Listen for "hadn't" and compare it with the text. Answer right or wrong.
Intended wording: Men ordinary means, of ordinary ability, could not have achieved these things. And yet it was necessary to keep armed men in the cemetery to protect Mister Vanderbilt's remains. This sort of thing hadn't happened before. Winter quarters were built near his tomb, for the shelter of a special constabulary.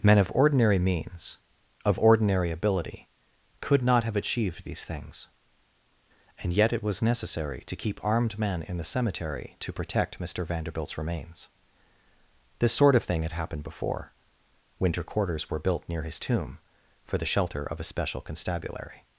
wrong